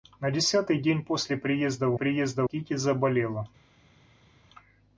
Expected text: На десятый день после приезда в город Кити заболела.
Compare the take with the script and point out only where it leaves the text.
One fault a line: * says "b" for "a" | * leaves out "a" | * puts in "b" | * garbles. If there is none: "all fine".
* says "приезда" for "город"